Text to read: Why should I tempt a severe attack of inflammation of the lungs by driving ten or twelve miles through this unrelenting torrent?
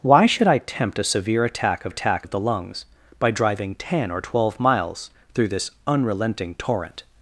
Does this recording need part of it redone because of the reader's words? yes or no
yes